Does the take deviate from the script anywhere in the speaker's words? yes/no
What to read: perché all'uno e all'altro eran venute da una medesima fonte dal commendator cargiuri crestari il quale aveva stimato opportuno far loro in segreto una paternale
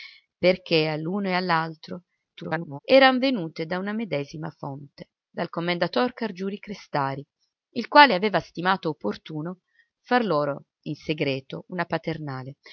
yes